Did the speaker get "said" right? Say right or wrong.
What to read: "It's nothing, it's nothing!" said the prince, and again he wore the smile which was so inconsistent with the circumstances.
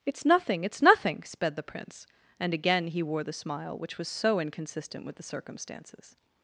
wrong